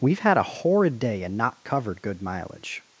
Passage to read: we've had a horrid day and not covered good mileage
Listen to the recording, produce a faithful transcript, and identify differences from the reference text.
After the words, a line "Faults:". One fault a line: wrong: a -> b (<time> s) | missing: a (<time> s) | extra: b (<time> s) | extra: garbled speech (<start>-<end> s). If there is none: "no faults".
we've had a horrid day and not covered good mileage
Faults:
no faults